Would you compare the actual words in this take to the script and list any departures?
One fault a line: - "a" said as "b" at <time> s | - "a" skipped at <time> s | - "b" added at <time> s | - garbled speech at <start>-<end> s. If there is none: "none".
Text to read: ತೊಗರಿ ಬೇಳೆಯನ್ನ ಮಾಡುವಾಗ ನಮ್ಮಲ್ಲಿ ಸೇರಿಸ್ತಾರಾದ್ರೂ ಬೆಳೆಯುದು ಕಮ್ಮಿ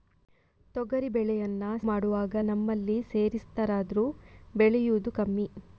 none